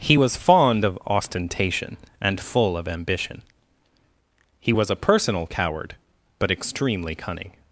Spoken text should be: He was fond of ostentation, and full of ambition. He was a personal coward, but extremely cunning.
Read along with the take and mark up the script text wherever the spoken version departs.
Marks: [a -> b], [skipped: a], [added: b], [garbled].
He was fond of ostentation, and full of ambition. He was a personal coward, but extremely cunning.